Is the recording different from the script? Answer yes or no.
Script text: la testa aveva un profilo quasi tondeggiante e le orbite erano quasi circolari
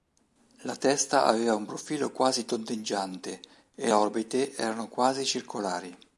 yes